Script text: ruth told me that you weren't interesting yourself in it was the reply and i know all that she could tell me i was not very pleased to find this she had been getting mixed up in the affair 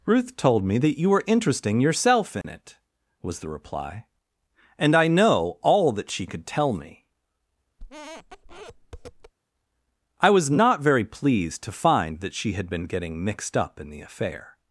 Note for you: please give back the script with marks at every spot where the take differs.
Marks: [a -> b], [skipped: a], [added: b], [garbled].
ruth told me that you [weren't -> were] interesting yourself in it was the reply and i know all that she could tell me i was not very pleased to find [this -> that] she had been getting mixed up in the affair